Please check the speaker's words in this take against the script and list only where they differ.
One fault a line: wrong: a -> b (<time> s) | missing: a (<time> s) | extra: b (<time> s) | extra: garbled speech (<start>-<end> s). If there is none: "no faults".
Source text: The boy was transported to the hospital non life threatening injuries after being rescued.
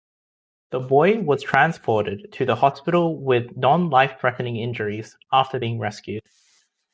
extra: with (3.2 s)